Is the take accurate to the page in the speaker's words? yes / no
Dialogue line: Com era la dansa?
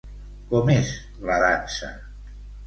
no